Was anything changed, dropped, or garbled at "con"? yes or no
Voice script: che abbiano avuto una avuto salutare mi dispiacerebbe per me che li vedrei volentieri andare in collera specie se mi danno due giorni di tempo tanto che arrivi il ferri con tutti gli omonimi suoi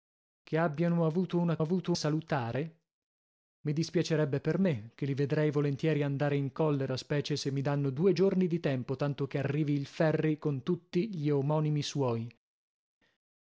no